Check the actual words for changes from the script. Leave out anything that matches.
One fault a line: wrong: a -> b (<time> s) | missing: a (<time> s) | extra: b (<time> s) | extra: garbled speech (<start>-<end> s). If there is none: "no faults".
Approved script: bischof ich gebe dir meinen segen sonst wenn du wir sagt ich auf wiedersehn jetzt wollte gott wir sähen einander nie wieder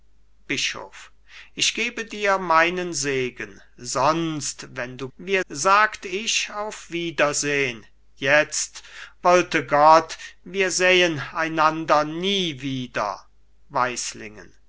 no faults